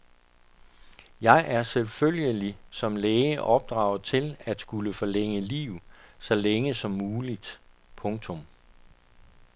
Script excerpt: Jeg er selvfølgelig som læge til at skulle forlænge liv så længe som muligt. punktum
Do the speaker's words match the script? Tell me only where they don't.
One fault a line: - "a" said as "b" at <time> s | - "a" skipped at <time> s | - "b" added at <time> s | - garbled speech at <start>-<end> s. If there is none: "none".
- "opdraget" added at 3.4 s